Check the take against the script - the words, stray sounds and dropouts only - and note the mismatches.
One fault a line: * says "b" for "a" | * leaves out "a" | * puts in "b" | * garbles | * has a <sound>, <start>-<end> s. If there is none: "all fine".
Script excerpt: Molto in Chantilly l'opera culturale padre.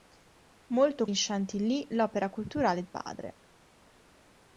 all fine